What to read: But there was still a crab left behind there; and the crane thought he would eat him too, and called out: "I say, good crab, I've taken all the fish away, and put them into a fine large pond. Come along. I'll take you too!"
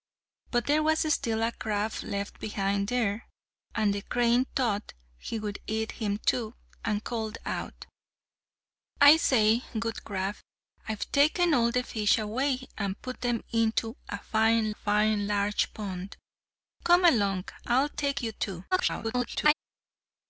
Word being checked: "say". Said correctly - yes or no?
yes